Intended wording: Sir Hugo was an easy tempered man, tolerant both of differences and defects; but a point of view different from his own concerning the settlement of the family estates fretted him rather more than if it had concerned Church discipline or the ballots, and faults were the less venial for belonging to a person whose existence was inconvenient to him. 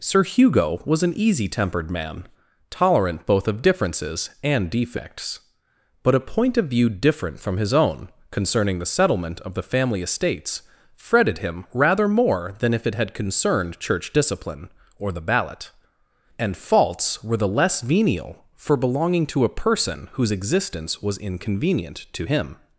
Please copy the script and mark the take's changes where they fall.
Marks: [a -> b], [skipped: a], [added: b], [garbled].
Sir Hugo was an easy tempered man, tolerant both of differences and defects; but a point of view different from his own concerning the settlement of the family estates fretted him rather more than if it had concerned Church discipline or the [ballots, -> ballot] and faults were the less venial for belonging to a person whose existence was inconvenient to him.